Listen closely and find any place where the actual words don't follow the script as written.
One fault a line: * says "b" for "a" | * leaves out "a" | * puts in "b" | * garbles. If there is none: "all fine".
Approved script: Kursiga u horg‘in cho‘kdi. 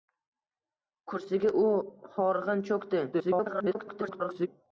* garbles